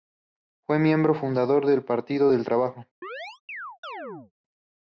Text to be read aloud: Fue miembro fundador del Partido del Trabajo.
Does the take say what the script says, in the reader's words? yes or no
yes